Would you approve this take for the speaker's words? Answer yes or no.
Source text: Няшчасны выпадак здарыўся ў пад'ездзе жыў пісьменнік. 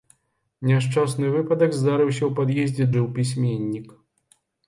yes